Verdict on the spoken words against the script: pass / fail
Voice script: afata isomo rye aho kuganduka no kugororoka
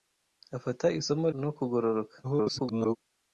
fail